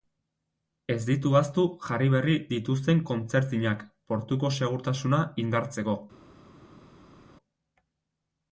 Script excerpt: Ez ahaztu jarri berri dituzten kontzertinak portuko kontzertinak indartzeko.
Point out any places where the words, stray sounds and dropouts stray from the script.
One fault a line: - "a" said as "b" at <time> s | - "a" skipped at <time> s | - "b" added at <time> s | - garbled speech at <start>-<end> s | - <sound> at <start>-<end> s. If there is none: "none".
- "ditu" added at 1.1 s
- "kontzertinak" said as "segurtasuna" at 4.6 s